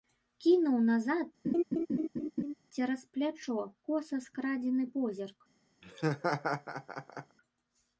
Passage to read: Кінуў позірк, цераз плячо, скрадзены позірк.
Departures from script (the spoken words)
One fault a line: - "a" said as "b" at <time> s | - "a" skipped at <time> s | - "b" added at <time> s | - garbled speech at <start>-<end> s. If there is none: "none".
- "позірк" said as "назад" at 0.8 s
- "коса" added at 3.9 s